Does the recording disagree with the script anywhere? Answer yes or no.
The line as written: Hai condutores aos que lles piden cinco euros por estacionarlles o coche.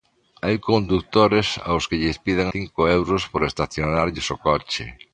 no